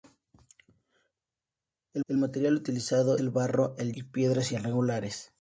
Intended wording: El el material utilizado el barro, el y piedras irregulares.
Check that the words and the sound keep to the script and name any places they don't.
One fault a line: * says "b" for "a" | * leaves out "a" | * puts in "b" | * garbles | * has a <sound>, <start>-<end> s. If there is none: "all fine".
all fine